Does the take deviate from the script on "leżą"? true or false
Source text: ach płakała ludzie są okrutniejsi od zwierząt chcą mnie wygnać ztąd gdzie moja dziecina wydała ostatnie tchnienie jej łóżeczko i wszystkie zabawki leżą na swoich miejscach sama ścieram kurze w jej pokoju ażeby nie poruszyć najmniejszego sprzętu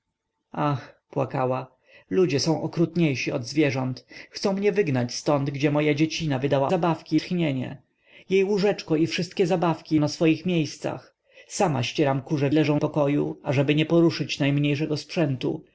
true